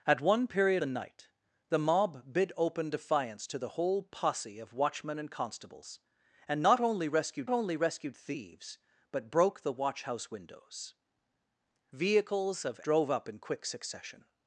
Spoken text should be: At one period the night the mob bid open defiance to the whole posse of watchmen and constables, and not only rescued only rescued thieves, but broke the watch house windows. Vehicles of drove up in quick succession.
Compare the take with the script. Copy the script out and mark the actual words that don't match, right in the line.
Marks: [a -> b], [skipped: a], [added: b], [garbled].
At one period the night the mob bid open defiance to the whole posse of watchmen and constables, and not only rescued only rescued thieves, but broke the watch house windows. Vehicles of drove up in quick succession.